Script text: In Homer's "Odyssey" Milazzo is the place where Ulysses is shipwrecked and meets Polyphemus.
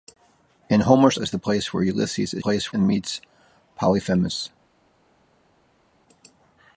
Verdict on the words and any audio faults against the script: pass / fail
fail